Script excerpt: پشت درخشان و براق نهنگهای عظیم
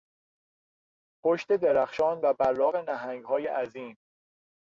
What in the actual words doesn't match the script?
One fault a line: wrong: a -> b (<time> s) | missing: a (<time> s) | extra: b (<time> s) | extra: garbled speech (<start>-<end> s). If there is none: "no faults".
no faults